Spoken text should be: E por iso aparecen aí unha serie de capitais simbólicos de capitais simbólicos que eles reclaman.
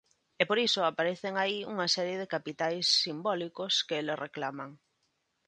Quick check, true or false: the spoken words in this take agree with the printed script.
false